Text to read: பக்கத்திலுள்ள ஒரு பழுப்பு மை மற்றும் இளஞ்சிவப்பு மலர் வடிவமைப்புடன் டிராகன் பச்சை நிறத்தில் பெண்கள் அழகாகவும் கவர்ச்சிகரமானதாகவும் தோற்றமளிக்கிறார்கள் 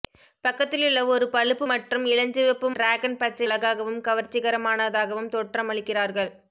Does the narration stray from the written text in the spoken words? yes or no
yes